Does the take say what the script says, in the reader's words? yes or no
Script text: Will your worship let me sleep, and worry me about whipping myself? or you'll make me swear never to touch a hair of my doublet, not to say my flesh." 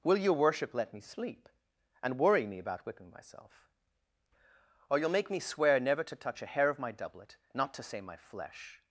yes